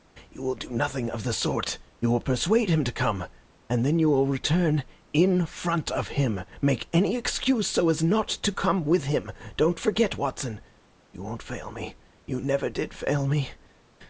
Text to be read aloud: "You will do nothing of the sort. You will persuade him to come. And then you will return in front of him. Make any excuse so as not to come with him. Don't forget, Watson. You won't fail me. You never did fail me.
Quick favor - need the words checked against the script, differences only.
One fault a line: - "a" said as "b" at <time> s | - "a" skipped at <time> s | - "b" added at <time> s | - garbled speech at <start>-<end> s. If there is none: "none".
none